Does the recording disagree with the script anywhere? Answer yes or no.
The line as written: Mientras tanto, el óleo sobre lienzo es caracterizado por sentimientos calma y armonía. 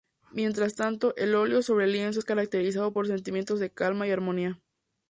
yes